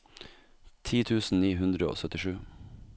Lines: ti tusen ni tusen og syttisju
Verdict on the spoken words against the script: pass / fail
fail